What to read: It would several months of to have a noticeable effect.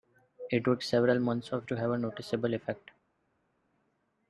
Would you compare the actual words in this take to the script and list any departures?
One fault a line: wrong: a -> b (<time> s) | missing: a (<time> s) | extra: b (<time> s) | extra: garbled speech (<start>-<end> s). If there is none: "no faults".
no faults